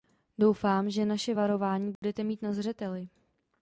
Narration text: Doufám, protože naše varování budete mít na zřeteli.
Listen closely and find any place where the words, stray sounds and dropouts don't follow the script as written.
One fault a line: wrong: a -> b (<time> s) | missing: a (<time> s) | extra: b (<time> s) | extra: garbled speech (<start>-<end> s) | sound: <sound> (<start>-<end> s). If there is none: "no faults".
wrong: protože -> že (0.9 s)
sound: dropout (2.0-2.0 s)